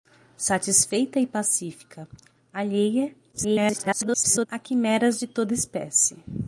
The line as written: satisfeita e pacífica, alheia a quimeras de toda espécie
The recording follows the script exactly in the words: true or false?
false